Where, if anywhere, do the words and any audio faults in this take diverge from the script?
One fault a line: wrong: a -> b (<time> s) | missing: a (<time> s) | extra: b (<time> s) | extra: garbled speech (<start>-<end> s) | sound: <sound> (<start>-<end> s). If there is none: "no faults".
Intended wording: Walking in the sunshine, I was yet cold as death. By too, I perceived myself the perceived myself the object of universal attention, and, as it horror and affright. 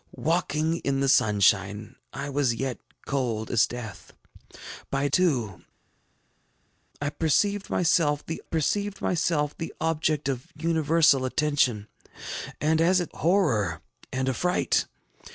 no faults